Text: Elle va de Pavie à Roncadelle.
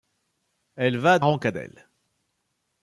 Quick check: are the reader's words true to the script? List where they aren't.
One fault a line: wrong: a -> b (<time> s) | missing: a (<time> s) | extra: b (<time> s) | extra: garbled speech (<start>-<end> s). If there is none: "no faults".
missing: de Pavie à (1.2 s)